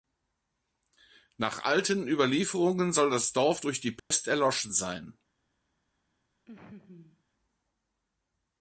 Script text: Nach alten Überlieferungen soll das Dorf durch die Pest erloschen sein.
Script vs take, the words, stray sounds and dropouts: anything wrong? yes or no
yes